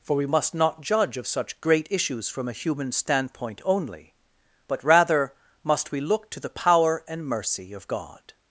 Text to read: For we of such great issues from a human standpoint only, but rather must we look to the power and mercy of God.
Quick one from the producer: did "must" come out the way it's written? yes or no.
yes